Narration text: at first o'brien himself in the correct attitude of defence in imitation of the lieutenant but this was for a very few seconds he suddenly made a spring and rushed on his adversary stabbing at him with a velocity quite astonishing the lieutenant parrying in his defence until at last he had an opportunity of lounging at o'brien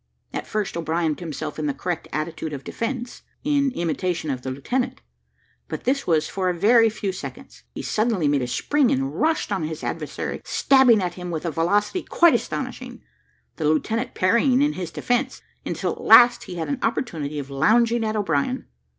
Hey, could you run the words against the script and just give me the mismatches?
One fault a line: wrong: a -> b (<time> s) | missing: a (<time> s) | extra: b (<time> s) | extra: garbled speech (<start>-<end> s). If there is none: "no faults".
no faults